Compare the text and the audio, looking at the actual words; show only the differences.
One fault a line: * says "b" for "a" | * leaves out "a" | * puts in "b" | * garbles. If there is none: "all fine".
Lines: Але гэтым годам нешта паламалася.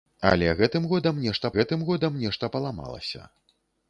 * puts in "гэтым годам нешта"